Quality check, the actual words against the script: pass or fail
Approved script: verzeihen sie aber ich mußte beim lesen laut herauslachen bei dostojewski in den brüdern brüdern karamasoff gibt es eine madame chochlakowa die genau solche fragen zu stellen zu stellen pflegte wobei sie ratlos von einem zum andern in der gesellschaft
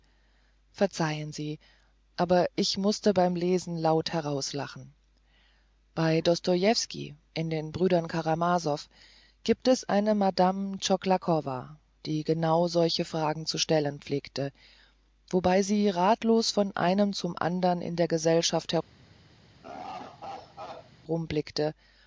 fail